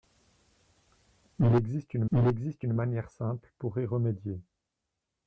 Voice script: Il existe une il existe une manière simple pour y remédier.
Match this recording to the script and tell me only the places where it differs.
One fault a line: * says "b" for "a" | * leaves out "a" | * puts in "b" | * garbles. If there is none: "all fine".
all fine